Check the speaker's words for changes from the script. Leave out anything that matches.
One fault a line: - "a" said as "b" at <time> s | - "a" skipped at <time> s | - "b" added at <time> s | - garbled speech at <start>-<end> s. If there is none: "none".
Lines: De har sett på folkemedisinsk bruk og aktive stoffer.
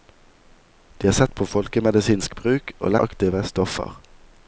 none